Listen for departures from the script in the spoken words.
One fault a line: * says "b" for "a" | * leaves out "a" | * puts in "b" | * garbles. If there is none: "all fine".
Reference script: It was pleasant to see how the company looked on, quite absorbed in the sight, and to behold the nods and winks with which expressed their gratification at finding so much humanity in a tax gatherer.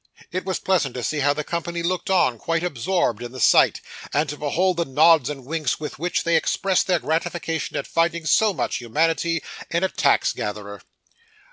* puts in "they"